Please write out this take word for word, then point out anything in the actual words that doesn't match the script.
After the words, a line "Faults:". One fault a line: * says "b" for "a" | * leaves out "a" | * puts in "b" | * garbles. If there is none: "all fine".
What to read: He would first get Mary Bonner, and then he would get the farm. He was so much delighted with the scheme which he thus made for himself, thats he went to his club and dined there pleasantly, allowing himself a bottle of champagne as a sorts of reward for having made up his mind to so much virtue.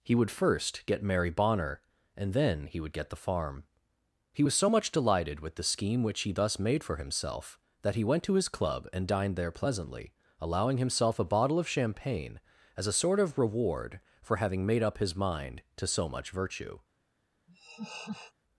He would first get Mary Bonner, and then he would get the farm. He was so much delighted with the scheme which he thus made for himself, that he went to his club and dined there pleasantly, allowing himself a bottle of champagne as a sort of reward for having made up his mind to so much virtue.
Faults:
* says "that" for "thats"
* says "sort" for "sorts"